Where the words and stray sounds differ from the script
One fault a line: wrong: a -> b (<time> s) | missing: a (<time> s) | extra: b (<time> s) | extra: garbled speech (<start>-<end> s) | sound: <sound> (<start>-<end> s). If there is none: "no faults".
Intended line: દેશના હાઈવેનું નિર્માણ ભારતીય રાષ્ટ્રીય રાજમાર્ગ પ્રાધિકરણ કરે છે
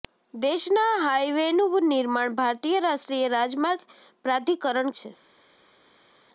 missing: કરે (4.9 s)